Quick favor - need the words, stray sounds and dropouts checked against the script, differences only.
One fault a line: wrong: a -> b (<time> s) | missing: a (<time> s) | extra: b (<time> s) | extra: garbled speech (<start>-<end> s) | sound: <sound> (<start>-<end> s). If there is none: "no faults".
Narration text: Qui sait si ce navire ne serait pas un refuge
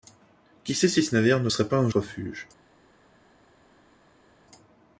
no faults